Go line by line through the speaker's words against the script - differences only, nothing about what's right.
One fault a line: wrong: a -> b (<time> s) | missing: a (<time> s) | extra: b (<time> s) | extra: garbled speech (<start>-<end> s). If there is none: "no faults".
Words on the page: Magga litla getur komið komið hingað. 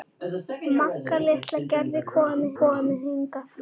no faults